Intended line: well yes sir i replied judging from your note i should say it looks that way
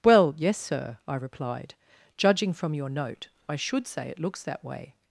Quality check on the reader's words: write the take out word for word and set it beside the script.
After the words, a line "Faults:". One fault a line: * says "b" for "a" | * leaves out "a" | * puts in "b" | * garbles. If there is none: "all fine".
well yes sir i replied judging from your note i should say it looks that way
Faults:
all fine